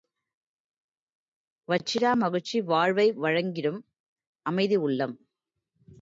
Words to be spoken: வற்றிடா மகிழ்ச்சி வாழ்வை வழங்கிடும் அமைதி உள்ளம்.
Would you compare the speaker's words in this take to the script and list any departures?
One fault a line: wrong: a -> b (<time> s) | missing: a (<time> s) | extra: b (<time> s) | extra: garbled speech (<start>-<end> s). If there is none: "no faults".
no faults